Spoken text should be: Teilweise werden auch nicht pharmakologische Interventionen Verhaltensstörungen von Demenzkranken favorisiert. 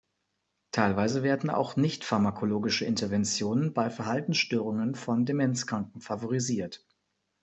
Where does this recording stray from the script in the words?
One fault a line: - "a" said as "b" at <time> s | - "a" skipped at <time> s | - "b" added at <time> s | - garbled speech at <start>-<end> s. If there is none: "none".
- "bei" added at 3.7 s